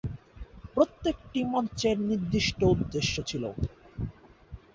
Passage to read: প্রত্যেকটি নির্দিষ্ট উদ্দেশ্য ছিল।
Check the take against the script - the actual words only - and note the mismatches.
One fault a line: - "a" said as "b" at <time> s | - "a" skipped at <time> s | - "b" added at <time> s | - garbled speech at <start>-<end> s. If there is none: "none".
- "মঞ্চের" added at 1.4 s